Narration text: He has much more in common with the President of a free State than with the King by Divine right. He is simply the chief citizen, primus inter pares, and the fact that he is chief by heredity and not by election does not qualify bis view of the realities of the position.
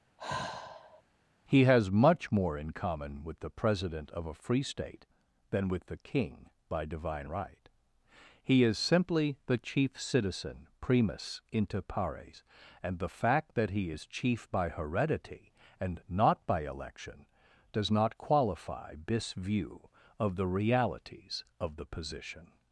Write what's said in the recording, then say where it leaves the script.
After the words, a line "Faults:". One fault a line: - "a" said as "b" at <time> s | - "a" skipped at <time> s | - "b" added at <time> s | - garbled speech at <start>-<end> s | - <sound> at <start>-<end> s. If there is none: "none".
He has much more in common with the President of a free State than with the King by Divine right. He is simply the chief citizen, primus inter pares, and the fact that he is chief by heredity and not by election does not qualify this view of the realities of the position.
Faults:
- sigh at 0.2-1.0 s
- "bis" said as "this" at 19.0 s